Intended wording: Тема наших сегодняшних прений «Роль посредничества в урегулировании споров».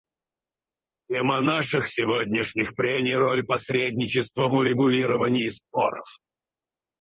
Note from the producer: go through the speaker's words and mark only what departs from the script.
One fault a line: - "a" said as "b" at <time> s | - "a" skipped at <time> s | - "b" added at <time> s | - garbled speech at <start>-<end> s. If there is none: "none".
none